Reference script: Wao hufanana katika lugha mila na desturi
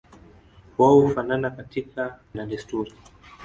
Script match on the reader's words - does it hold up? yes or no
no